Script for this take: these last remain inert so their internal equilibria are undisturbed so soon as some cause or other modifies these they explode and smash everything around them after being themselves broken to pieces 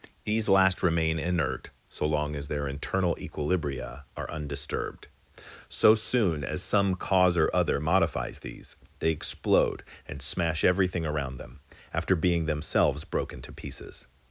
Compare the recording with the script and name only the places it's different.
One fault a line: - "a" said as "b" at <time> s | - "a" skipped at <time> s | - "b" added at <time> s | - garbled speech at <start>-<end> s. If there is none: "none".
- "long as" added at 2.0 s